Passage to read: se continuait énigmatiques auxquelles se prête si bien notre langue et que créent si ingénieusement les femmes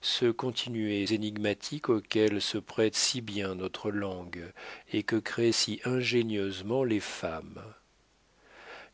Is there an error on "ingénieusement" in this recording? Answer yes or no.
no